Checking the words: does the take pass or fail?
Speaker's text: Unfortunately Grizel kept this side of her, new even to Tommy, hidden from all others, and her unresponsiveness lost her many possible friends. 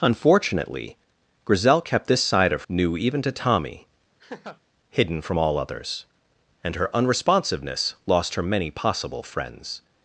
fail